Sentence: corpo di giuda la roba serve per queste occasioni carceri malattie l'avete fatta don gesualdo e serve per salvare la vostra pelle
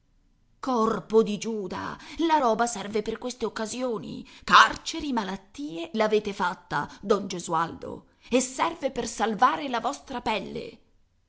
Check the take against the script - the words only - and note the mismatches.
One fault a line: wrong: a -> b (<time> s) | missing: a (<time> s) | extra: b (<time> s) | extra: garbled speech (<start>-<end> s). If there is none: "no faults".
no faults